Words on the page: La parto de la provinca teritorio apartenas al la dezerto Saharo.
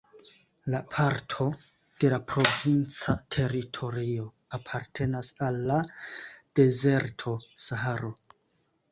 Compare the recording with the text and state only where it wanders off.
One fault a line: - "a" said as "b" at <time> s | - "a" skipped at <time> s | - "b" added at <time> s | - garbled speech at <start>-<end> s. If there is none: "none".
none